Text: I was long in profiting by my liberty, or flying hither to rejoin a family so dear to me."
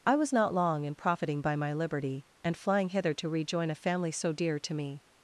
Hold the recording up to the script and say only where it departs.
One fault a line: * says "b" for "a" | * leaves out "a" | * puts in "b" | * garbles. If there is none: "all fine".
* puts in "not"
* says "and" for "or"